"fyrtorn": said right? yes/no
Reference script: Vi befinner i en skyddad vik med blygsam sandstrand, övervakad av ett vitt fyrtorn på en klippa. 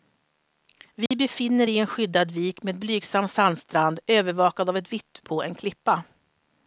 no